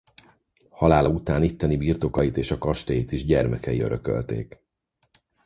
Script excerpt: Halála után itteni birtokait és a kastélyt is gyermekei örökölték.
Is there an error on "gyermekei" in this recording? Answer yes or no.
no